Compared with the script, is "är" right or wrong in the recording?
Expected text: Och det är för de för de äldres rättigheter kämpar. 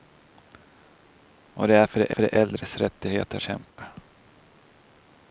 right